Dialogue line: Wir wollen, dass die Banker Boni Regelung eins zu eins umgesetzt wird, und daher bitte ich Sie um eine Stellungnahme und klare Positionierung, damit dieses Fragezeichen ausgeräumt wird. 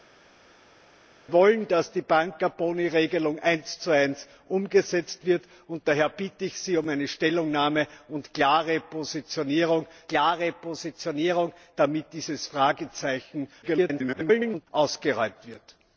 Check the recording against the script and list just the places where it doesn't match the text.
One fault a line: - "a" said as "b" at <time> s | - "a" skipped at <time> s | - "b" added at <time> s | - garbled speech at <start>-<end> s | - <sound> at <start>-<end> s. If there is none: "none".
- "klare Positionierung" added at 10.1 s
- garbled speech at 13.6-14.7 s